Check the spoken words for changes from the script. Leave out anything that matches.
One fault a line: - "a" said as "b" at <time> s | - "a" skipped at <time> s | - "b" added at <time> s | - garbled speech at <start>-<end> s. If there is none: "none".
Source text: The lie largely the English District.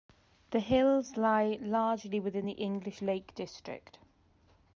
- "hills" added at 0.6 s
- "within" added at 2.2 s
- "Lake" added at 3.0 s